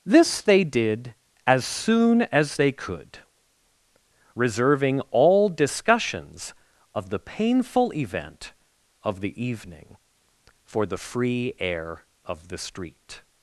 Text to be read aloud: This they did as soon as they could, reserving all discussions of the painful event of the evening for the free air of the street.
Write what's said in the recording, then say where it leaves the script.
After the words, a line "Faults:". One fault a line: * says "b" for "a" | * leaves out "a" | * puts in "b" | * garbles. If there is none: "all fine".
This they did as soon as they could, reserving all discussions of the painful event of the evening for the free air of the street.
Faults:
all fine